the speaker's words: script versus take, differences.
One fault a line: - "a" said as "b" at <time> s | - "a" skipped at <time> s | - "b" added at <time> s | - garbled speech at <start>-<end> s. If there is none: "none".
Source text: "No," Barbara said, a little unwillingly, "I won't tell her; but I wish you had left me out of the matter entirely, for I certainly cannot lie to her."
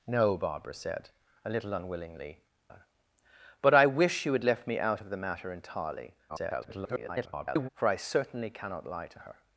- "I won't tell" skipped at 2.4 s
- garbled speech at 6.3-7.7 s